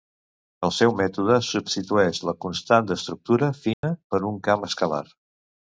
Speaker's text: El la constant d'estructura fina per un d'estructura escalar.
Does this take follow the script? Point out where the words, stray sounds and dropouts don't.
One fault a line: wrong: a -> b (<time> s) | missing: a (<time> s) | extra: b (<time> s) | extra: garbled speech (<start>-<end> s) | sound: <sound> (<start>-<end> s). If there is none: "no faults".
extra: seu mètode substitueix (0.8 s)
sound: dropout (3.7-3.8 s)
wrong: d'estructura -> camp (4.5 s)